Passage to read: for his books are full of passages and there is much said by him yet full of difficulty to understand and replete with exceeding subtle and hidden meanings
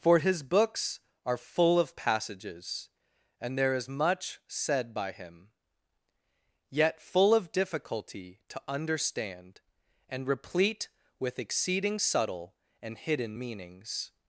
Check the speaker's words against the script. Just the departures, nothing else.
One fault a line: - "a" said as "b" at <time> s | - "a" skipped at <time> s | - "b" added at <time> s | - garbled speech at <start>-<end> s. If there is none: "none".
none